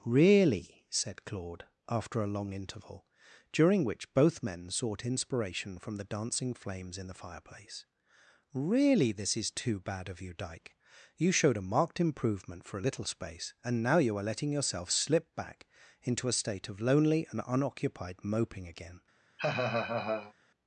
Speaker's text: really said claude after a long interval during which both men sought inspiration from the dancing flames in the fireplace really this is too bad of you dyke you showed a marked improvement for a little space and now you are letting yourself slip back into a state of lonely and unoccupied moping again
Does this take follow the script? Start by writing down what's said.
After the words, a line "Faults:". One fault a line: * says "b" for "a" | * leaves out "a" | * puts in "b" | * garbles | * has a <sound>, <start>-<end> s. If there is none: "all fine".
really said claude after a long interval during which both men sought inspiration from the dancing flames in the fireplace really this is too bad of you dyke you showed a marked improvement for a little space and now you are letting yourself slip back into a state of lonely and unoccupied moping again
Faults:
* has a laugh, 19.4-20.3 s